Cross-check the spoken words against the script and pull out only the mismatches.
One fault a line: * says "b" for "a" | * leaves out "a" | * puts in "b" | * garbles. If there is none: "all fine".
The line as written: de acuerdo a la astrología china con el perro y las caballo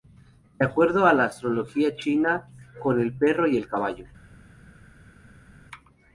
* says "el" for "las"